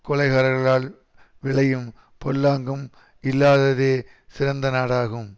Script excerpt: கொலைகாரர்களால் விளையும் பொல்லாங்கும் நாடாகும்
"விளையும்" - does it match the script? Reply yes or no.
yes